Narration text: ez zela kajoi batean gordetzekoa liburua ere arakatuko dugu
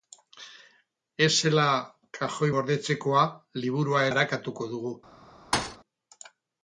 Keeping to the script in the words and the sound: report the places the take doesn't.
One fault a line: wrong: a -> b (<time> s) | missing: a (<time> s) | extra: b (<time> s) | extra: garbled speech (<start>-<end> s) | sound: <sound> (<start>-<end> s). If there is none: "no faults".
missing: batean (2.5 s)
missing: ere (4.0 s)
sound: thud (5.5-5.8 s)